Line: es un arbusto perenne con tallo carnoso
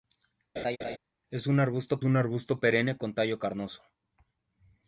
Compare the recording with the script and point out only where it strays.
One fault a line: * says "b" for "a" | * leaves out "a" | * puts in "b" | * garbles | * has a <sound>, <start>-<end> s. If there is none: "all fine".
* has a laugh, 0.6-1.0 s
* puts in "un arbusto"